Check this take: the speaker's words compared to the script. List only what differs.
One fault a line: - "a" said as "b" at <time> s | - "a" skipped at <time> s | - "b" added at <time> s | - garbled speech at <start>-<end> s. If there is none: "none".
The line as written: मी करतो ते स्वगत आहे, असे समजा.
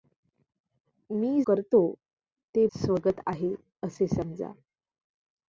none